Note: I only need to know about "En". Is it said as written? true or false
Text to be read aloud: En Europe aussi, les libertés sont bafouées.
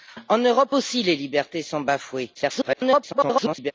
true